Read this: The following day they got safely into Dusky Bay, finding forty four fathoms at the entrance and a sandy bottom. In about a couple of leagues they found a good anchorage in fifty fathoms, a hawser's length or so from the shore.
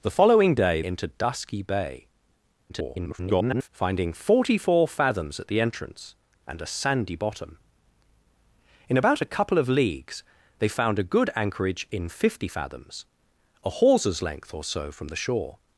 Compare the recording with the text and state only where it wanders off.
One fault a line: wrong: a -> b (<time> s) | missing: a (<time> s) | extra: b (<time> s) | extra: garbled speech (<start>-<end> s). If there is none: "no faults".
missing: they got safely (0.8 s)
extra: garbled speech (2.7-3.7 s)